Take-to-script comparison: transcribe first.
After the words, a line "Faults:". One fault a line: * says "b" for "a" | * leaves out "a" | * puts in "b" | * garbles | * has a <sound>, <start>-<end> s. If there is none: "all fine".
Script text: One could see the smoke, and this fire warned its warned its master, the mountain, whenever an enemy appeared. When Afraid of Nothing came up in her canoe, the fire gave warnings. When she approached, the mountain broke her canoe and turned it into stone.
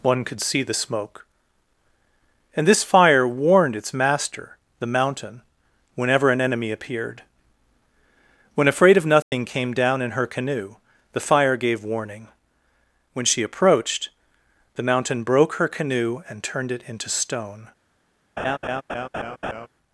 One could see the smoke, and this fire warned its master, the mountain, whenever an enemy appeared. When Afraid of Nothing came down in her canoe, the fire gave warning. When she approached, the mountain broke her canoe and turned it into stone.
Faults:
* leaves out "warned its"
* has a dropout, 9.2-9.3 s
* says "down" for "up"
* says "warning" for "warnings"
* has a laugh, 18.4-19.7 s